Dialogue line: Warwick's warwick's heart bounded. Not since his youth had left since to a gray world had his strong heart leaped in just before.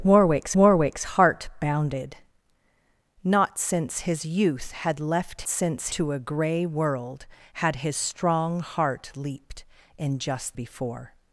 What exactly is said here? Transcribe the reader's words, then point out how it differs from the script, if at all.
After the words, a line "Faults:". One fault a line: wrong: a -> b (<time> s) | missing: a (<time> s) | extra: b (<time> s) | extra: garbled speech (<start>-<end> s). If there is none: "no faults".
Warwick's warwick's heart bounded. Not since his youth had left since to a gray world had his strong heart leaped in just before.
Faults:
no faults